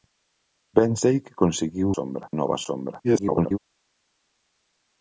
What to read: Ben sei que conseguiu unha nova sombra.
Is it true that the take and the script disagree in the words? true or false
true